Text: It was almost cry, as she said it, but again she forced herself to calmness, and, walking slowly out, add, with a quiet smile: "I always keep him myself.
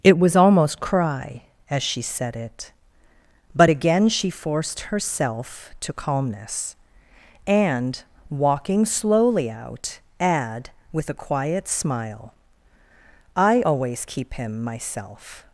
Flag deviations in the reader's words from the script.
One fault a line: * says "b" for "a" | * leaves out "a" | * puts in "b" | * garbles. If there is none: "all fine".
all fine